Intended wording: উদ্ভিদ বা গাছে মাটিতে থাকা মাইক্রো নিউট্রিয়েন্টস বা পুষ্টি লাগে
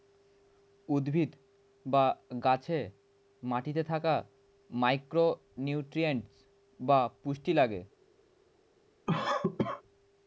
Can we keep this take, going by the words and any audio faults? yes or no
no